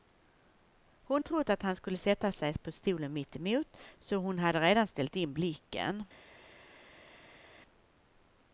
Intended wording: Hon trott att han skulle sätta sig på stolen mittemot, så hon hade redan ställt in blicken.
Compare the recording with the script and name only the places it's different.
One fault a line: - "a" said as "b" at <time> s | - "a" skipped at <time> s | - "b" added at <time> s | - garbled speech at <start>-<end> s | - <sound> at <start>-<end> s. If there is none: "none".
none